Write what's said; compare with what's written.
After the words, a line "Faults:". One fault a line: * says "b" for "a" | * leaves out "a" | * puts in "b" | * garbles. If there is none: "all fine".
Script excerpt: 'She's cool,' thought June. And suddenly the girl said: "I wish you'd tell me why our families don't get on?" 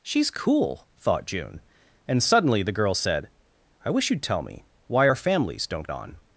'She's cool,' thought June. And suddenly the girl said: "I wish you'd tell me why our families don't on?"
Faults:
* leaves out "get"